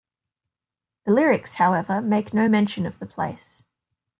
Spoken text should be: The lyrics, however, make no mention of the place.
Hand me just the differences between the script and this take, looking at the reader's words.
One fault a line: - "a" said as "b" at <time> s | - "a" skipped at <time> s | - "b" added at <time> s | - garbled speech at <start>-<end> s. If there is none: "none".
none